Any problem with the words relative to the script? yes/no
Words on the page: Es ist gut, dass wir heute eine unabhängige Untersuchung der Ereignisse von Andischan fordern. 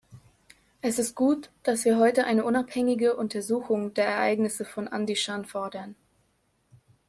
no